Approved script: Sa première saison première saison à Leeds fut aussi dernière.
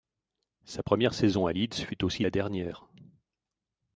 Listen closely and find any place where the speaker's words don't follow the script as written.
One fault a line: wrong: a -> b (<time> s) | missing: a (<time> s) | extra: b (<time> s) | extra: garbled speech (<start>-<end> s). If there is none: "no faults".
missing: première saison (1.4 s)
extra: la (2.2 s)